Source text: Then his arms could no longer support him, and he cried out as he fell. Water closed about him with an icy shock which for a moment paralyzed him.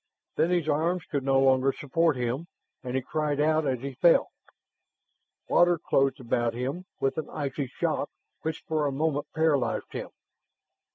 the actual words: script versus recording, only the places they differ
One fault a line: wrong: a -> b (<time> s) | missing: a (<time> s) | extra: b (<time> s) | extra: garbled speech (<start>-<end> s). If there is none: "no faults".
no faults